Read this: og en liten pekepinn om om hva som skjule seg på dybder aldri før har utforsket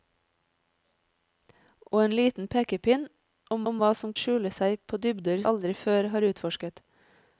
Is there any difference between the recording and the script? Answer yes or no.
no